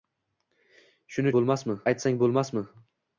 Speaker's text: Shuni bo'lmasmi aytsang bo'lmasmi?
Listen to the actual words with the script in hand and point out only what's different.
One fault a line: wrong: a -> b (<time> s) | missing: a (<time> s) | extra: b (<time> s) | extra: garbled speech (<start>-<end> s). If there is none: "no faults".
no faults